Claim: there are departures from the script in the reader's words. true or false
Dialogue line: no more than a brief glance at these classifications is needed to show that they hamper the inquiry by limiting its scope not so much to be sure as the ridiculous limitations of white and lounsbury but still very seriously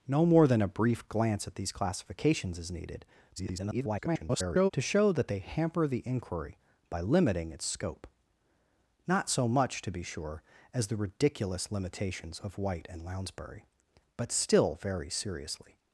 true